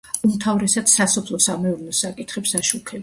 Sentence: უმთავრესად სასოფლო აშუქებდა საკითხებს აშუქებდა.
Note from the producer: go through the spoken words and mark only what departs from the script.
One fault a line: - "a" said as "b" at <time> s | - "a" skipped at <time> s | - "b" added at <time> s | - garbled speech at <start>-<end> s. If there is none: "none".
- "აშუქებდა" said as "სამეურნეო" at 1.4 s